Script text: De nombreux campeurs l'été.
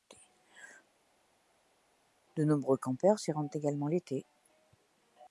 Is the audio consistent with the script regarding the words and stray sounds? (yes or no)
no